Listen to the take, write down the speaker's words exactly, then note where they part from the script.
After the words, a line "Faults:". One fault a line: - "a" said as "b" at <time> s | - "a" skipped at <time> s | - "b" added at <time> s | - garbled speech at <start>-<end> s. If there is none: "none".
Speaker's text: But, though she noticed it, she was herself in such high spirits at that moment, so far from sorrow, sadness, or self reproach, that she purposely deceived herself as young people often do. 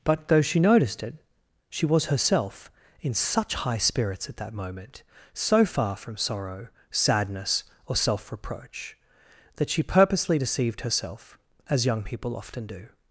But, though she noticed it, she was herself in such high spirits at that moment, so far from sorrow, sadness, or self reproach, that she purposely deceived herself as young people often do.
Faults:
none